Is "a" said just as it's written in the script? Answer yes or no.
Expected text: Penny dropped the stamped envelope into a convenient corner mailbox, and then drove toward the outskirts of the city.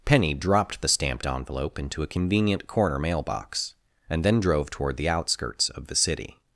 yes